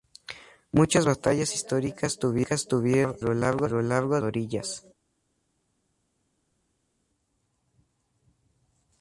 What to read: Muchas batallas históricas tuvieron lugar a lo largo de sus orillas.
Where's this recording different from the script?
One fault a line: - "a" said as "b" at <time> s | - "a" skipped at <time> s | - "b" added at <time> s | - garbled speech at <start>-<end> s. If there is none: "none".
- "a" skipped at 3.2 s
- "de sus" skipped at 4.2 s